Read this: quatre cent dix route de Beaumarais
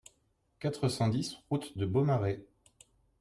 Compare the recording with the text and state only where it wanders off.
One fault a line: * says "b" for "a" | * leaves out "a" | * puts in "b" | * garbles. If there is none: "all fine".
all fine